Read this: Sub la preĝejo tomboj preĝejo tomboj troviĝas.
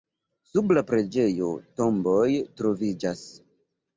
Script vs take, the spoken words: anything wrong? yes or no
yes